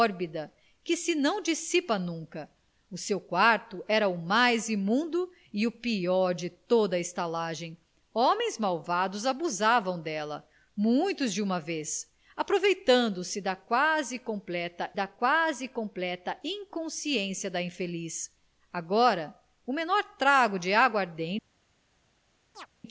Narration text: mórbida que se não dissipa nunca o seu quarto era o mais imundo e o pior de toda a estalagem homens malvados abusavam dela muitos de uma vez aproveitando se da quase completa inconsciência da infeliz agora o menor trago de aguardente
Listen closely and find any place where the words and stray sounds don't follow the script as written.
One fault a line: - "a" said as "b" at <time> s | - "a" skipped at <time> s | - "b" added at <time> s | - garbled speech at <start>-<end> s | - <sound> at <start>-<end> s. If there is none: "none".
- "da quase completa" added at 14.9 s
- chirp at 22.5-22.7 s